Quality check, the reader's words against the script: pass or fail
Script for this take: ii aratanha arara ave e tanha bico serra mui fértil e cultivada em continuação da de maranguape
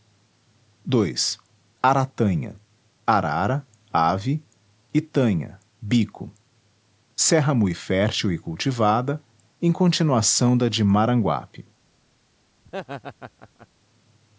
pass